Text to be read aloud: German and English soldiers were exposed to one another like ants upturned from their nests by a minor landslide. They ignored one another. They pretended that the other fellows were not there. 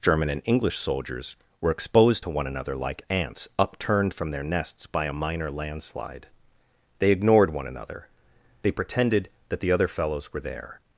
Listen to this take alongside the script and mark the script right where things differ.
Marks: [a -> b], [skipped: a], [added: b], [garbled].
German and English soldiers were exposed to one another like ants upturned from their nests by a minor landslide. They ignored one another. They pretended that the other fellows were [skipped: not] there.